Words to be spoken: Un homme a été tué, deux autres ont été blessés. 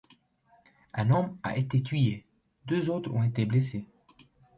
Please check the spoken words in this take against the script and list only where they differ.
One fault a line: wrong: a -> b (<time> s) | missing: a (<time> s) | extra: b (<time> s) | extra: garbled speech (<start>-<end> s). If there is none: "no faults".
no faults